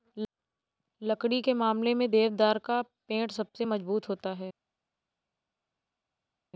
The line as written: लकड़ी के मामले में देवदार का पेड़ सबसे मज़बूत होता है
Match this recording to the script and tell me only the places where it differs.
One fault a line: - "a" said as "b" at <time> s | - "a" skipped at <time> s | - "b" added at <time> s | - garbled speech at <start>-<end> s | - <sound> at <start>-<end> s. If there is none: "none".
none